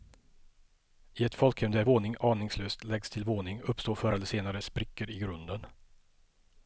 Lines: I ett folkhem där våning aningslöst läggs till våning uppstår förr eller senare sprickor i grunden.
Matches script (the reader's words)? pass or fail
pass